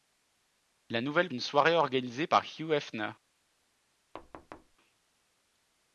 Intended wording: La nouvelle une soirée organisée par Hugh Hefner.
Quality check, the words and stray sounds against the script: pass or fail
fail